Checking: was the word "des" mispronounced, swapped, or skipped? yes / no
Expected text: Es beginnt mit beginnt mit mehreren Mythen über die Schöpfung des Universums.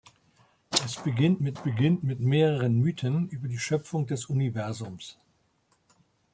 no